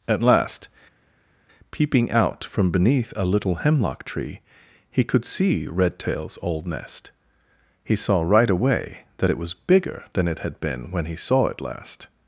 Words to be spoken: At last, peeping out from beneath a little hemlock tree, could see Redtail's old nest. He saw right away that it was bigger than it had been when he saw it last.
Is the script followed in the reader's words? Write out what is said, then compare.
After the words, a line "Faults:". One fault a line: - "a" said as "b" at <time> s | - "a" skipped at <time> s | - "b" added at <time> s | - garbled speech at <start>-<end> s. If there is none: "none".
At last, peeping out from beneath a little hemlock tree, he could see Redtail's old nest. He saw right away that it was bigger than it had been when he saw it last.
Faults:
- "he" added at 4.9 s